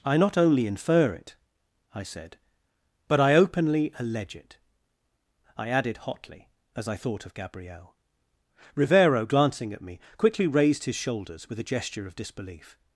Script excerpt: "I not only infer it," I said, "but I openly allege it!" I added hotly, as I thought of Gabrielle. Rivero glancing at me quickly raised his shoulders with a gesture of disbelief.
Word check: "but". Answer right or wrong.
right